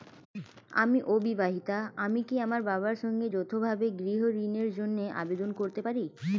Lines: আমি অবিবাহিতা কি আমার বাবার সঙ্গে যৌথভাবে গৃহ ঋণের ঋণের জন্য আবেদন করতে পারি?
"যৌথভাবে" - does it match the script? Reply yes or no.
yes